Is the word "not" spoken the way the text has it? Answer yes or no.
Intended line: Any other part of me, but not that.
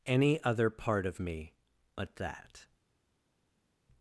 no